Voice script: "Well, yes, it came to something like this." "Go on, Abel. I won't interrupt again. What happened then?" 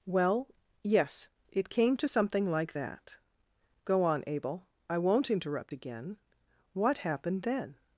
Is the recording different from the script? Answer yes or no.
yes